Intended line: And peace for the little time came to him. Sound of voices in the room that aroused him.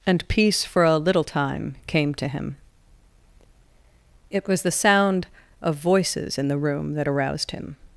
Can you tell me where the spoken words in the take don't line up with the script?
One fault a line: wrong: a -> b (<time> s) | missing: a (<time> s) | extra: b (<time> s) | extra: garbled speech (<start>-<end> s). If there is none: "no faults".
wrong: the -> a (0.8 s)
extra: It was the (4.3 s)